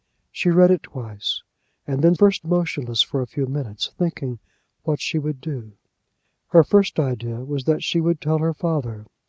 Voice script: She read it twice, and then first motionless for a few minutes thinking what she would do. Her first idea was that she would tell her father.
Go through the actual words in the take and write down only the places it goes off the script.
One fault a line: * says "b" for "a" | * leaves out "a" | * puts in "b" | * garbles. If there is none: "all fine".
all fine